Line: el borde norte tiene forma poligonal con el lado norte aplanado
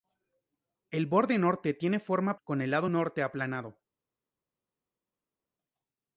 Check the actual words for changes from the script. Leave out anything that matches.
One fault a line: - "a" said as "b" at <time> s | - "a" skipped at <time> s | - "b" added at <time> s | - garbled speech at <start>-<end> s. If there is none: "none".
- "poligonal" skipped at 2.4 s